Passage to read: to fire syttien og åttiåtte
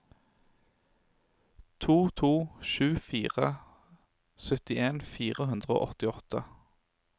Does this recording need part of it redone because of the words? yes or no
yes